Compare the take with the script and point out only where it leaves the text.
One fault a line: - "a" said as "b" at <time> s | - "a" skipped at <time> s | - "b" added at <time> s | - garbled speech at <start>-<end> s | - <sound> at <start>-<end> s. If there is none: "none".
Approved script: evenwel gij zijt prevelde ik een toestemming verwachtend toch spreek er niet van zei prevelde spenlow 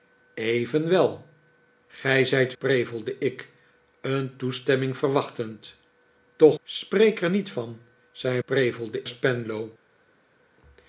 none